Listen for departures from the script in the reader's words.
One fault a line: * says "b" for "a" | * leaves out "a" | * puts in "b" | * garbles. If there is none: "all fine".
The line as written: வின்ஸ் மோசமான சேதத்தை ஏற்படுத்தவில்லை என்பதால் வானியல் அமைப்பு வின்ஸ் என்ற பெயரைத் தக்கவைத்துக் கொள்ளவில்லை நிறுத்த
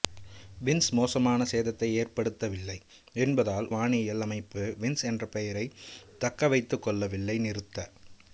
all fine